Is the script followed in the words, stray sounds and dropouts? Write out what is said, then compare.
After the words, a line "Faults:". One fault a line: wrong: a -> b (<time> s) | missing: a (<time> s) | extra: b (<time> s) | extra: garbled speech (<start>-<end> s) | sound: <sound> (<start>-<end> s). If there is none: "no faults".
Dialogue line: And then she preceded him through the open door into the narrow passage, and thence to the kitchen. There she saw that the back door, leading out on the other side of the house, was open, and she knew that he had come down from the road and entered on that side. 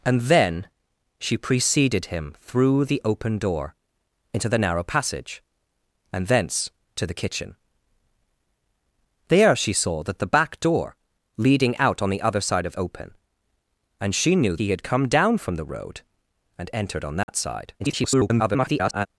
And then she preceded him through the open door into the narrow passage, and thence to the kitchen. There she saw that the back door, leading out on the other side of open, and she knew he had come down from the road and entered on that side. [garbled]
Faults:
missing: the house was (12.8 s)
missing: that (14.6 s)
sound: dropout (17.2-17.3 s)
extra: garbled speech (17.8-19.1 s)